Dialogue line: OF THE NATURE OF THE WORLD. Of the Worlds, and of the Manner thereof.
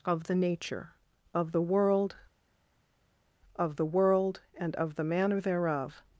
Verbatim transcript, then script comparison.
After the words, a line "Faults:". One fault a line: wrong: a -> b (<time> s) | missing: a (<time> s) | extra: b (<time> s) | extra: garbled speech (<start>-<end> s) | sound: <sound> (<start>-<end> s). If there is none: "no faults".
OF THE NATURE OF THE WORLD. Of the World, and of the Manner thereof.
Faults:
wrong: Worlds -> World (3.9 s)